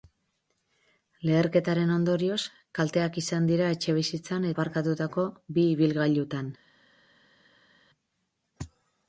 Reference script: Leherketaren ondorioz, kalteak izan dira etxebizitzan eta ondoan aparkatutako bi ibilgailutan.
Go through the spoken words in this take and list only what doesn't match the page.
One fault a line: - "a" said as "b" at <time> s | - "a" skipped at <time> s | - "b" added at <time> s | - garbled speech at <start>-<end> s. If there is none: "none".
- "eta ondoan" skipped at 4.5 s